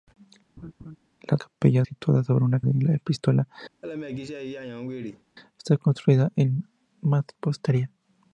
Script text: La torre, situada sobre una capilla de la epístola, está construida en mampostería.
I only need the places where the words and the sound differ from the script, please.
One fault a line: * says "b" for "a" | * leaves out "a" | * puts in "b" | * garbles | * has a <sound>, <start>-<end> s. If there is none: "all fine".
* has a laugh, 0.6-1.0 s
* says "capilla" for "torre"
* leaves out "capilla"
* has a laugh, 3.8-5.2 s